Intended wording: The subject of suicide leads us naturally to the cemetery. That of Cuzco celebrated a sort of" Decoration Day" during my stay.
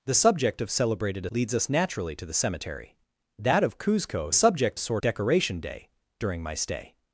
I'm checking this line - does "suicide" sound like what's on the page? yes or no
no